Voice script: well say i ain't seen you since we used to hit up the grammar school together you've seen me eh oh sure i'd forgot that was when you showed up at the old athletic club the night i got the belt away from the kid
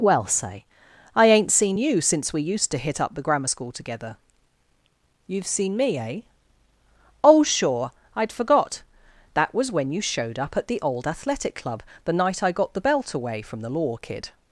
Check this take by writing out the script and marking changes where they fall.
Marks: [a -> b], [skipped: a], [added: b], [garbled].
well say i ain't seen you since we used to hit up the grammar school together you've seen me eh oh sure i'd forgot that was when you showed up at the old athletic club the night i got the belt away from the [added: law] kid